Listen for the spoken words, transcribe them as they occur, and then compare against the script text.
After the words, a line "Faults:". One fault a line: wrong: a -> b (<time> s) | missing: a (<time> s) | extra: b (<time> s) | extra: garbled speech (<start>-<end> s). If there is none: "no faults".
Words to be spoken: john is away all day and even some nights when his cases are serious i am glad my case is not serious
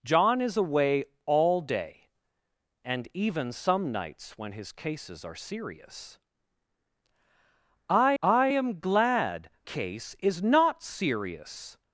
john is away all day and even some nights when his cases are serious i i am glad case is not serious
Faults:
extra: i (8.2 s)
missing: my (9.5 s)